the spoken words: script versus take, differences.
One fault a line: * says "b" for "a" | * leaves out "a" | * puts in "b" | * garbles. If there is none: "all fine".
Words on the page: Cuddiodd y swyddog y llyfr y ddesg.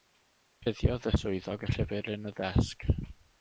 * puts in "yn"